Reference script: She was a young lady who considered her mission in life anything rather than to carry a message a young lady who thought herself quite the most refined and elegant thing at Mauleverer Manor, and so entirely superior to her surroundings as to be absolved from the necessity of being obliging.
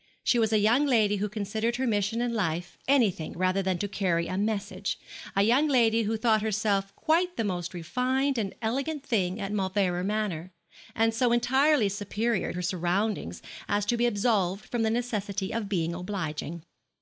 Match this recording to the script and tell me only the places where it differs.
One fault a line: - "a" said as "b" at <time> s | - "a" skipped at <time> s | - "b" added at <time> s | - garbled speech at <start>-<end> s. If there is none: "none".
- "to" skipped at 12.5 s